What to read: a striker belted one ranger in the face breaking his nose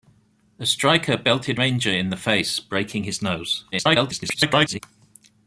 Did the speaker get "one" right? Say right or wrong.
wrong